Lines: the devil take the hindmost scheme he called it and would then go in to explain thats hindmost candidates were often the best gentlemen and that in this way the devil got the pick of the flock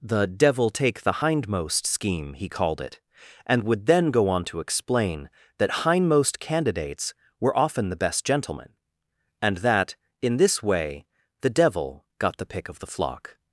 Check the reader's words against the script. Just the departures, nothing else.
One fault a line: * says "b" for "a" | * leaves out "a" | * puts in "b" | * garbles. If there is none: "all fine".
* says "on" for "in"
* says "that" for "thats"